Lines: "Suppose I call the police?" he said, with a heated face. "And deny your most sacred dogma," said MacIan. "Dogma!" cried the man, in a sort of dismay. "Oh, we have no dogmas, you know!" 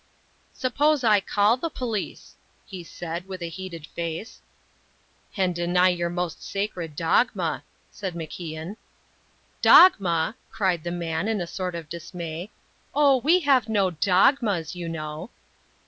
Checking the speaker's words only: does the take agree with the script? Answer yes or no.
yes